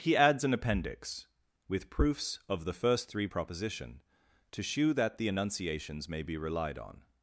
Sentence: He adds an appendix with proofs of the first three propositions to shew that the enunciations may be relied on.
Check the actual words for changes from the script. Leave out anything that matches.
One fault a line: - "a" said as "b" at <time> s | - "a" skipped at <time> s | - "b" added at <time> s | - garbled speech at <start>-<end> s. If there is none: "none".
- "propositions" said as "proposition" at 3.2 s